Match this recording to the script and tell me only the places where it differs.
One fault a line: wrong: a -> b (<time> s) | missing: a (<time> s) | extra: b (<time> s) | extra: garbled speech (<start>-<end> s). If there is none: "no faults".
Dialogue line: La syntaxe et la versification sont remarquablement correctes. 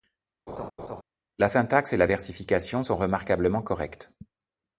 no faults